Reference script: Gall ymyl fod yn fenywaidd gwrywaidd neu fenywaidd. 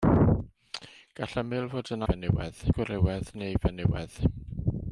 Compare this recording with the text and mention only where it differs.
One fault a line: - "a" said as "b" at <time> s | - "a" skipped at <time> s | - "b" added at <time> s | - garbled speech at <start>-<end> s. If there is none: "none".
none